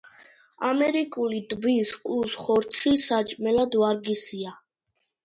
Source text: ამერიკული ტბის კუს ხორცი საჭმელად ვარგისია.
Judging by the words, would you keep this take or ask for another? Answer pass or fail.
pass